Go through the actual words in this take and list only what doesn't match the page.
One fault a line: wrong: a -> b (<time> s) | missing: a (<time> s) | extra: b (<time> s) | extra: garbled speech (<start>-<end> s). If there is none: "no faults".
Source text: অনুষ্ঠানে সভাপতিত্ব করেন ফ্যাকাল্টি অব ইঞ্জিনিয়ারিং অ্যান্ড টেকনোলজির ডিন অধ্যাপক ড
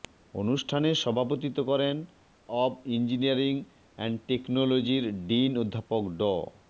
missing: ফ্যাকাল্টি (1.9 s)